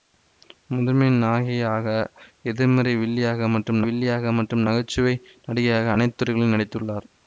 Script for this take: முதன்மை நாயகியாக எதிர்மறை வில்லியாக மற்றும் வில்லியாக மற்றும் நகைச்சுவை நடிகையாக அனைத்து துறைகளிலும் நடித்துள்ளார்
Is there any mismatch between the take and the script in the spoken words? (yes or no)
no